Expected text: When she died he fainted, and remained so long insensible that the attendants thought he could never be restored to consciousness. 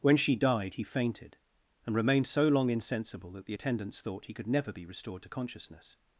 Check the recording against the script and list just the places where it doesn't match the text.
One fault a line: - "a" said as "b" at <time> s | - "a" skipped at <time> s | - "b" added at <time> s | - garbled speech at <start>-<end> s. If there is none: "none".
none